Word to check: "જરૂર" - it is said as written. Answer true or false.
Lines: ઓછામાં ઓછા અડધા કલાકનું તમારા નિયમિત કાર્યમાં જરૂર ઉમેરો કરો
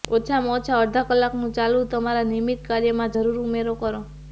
true